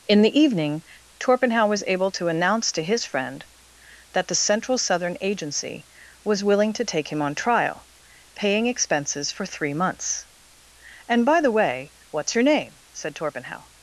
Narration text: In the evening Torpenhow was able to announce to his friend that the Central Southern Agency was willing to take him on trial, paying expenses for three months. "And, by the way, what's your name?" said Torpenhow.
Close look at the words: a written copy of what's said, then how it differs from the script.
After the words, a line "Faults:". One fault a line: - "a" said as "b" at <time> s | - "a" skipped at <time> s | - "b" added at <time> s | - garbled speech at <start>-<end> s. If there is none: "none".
In the evening Torpenhow was able to announce to his friend that the Central Southern Agency was willing to take him on trial, paying expenses for three months. "And, by the way, what's your name?" said Torpenhow.
Faults:
none